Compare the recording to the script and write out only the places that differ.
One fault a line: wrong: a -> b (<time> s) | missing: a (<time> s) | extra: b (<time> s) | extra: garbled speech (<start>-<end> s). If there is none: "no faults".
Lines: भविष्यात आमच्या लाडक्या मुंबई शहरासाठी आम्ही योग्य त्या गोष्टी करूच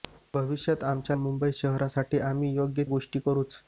missing: लाडक्या (1.1 s)
missing: त्या (2.8 s)